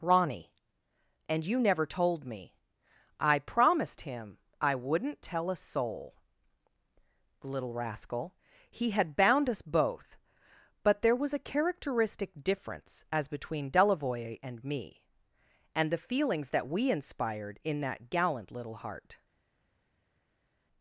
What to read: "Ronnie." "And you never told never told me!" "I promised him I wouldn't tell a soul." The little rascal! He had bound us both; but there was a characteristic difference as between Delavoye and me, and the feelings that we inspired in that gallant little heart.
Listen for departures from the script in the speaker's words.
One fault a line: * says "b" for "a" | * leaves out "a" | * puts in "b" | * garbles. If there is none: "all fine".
* leaves out "never told"